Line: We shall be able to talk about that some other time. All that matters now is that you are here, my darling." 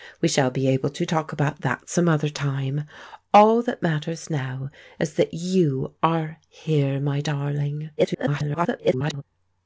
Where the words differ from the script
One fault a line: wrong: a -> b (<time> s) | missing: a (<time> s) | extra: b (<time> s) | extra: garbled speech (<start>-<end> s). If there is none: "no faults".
extra: garbled speech (8.0-9.2 s)